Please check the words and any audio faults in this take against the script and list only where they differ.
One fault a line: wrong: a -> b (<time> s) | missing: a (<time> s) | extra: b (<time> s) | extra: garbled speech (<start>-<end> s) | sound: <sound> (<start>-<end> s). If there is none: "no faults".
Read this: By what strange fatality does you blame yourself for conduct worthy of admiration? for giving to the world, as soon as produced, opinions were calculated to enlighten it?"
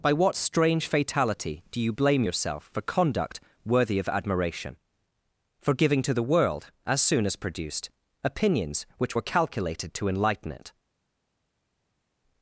wrong: does -> do (1.7 s)
extra: which (9.0 s)